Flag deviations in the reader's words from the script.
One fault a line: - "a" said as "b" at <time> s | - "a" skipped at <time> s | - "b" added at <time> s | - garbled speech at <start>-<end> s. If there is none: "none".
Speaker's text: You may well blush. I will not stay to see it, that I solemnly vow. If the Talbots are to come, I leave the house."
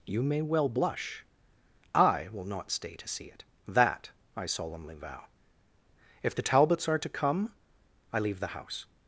none